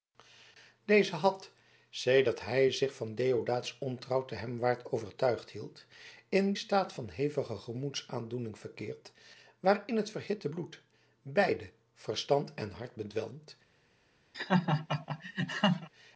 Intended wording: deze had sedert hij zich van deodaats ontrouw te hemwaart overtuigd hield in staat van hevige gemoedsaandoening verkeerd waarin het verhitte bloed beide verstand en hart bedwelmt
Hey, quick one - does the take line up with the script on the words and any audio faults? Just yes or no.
no